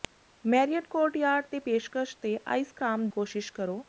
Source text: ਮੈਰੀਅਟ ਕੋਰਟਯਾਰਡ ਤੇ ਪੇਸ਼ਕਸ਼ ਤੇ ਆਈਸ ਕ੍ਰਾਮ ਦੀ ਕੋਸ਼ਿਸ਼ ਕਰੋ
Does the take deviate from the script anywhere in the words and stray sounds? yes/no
yes